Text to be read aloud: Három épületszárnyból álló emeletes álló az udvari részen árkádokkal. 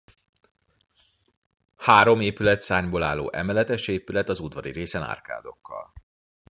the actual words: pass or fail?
fail